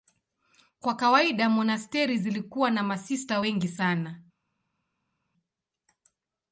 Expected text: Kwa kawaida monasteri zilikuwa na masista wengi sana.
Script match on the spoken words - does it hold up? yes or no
yes